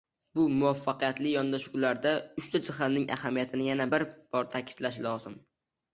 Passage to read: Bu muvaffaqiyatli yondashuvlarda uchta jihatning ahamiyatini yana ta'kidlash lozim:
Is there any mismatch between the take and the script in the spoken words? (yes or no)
yes